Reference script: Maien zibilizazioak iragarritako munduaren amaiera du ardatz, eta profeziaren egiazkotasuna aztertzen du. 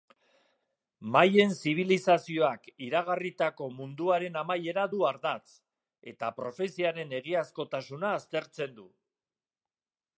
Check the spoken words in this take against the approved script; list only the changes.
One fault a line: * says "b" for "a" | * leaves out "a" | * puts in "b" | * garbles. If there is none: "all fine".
all fine